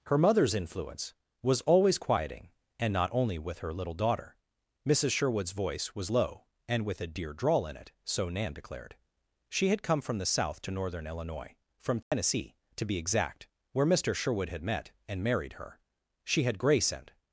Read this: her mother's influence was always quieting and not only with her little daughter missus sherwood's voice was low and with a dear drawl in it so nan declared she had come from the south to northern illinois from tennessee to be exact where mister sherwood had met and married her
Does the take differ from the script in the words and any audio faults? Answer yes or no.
yes